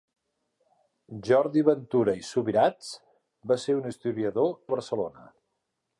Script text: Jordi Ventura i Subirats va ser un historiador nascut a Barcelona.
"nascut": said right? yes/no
no